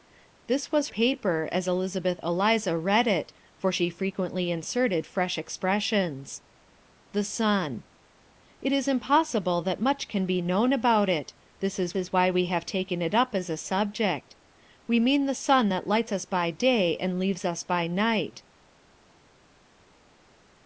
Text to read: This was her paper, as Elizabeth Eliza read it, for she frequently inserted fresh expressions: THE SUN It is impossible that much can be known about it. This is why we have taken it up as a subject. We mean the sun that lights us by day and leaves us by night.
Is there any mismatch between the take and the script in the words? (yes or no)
yes